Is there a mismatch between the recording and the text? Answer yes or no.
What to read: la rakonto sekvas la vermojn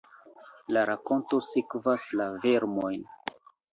no